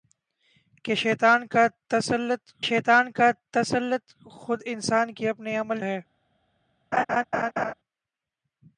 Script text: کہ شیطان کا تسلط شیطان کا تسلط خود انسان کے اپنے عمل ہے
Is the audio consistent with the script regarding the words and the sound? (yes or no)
no